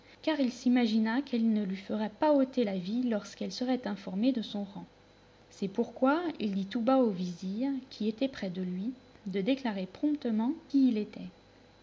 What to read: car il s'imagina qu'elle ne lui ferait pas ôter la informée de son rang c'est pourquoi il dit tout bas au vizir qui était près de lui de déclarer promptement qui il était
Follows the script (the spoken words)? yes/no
no